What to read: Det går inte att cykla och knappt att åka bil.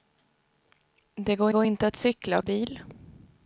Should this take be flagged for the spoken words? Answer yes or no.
yes